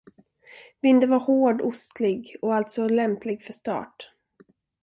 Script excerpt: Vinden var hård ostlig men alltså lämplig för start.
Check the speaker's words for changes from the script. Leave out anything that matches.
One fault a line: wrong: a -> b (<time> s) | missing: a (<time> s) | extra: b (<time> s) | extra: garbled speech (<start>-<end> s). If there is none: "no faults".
wrong: men -> och (2.4 s)